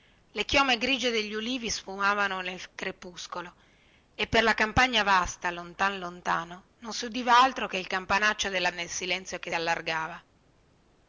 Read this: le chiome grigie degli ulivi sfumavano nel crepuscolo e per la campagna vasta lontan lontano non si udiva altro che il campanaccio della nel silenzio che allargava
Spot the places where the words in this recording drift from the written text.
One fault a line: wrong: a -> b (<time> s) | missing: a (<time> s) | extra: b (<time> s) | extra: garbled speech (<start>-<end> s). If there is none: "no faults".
no faults